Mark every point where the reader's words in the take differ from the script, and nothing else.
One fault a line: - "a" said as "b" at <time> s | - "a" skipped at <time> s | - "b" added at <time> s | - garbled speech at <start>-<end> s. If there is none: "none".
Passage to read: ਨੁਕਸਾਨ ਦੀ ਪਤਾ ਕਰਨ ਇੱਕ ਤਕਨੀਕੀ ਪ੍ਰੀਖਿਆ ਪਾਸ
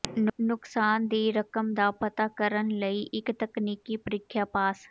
- "ਰਕਮ ਦਾ" added at 1.3 s
- "ਲਈ" added at 2.8 s